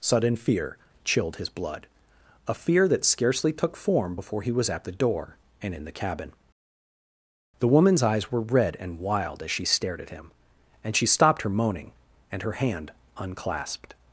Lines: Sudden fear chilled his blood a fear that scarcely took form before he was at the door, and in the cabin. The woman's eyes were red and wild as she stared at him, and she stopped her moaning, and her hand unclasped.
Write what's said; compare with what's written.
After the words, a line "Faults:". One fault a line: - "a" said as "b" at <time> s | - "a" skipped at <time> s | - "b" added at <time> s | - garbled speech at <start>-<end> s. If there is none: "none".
Sudden fear chilled his blood a fear that scarcely took form before he was at the door, and in the cabin. The woman's eyes were red and wild as she stared at him, and she stopped her moaning, and her hand unclasped.
Faults:
none